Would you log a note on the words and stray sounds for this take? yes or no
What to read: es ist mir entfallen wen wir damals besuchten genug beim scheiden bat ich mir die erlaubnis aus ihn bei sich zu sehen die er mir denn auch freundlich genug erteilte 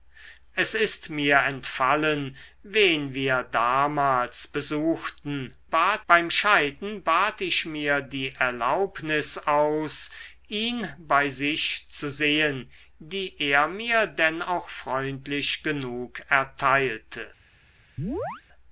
yes